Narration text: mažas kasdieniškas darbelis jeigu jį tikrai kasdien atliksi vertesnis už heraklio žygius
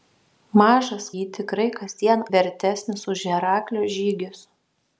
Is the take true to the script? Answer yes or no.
no